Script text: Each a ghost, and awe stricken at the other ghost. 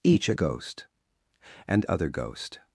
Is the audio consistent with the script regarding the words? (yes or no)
no